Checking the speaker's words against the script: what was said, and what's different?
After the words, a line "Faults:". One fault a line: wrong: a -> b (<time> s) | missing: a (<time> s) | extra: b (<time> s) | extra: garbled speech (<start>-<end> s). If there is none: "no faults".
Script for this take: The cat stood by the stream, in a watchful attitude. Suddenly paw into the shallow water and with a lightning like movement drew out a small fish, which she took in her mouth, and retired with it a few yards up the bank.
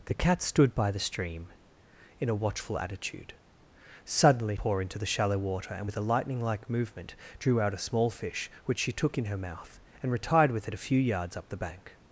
The cat stood by the stream, in a watchful attitude. Suddenly paw into the shallow water and with a lightning like movement drew out a small fish, which she took in her mouth, and retired with it a few yards up the bank.
Faults:
no faults